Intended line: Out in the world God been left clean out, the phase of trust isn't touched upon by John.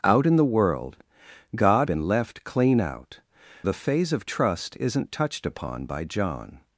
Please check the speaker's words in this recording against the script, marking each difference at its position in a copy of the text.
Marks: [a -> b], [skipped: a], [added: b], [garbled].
Out in the world God been left clean out, the phase of trust isn't touched upon by John.